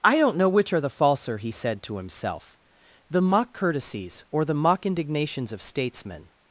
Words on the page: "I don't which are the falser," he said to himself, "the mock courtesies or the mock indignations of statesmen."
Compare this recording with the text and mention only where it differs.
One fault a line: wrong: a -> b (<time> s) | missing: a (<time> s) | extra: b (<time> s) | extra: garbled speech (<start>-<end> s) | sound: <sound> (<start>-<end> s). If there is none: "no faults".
extra: know (0.4 s)